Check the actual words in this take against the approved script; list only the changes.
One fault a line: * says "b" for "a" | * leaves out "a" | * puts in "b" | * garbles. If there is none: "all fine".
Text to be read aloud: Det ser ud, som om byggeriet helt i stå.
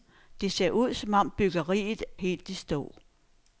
all fine